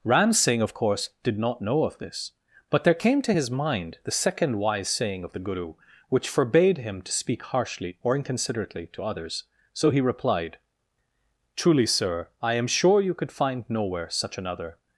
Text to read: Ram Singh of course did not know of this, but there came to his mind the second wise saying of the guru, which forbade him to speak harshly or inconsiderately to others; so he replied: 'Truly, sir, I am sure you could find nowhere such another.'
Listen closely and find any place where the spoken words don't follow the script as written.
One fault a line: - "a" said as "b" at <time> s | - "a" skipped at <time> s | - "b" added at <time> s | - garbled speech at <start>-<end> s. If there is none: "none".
none